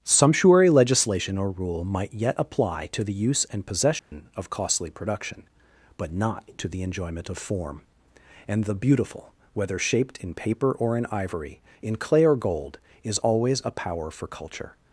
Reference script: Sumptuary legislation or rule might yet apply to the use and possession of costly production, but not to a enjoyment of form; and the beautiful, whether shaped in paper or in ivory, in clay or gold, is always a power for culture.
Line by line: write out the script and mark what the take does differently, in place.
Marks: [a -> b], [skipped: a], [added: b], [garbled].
Sumptuary legislation or rule might yet apply to the use and possession of costly production, but not to [a -> the] enjoyment of form; and the beautiful, whether shaped in paper or in ivory, in clay or gold, is always a power for culture.